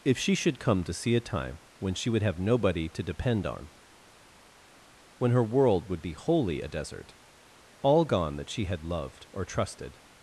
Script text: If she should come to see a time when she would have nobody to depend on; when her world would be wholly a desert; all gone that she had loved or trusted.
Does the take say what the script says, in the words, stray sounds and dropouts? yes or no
yes